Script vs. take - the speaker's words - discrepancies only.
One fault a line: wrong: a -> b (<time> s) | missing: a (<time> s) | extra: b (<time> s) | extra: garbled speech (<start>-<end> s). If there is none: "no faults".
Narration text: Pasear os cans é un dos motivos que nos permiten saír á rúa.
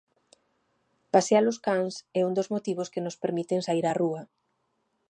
no faults